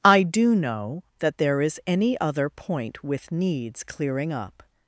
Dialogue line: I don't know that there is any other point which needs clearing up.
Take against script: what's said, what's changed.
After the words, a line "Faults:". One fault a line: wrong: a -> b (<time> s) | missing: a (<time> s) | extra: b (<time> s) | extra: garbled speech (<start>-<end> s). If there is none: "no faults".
I do know that there is any other point with needs clearing up.
Faults:
wrong: don't -> do (0.2 s)
wrong: which -> with (3.0 s)